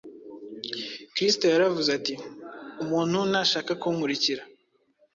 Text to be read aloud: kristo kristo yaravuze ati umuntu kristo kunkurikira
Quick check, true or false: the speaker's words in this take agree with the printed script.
false